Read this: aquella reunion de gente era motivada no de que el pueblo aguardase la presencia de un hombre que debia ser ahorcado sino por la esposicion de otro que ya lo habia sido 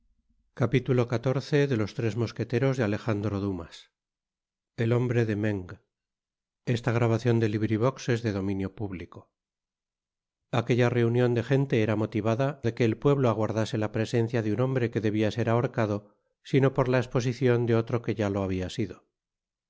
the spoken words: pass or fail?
fail